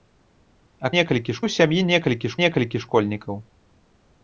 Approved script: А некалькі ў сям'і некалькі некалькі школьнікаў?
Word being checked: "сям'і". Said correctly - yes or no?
yes